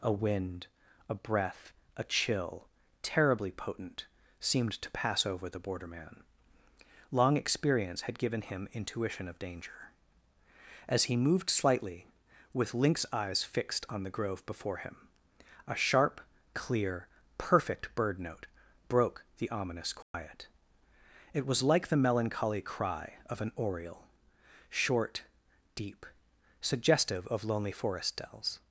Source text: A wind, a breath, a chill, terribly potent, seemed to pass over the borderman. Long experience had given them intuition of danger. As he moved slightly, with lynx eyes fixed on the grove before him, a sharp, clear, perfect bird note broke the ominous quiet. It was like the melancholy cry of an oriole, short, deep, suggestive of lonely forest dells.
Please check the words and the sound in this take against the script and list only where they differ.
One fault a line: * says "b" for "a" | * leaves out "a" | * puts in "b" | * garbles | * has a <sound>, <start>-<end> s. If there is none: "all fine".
* says "him" for "them"
* has a dropout, 20.0-20.1 s